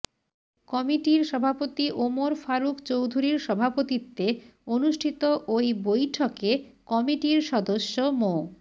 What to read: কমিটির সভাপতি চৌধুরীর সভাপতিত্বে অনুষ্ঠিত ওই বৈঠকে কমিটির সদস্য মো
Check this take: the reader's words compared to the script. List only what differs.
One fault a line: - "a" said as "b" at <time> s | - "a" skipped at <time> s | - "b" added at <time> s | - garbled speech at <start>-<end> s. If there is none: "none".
- "ওমর ফারুক" added at 2.0 s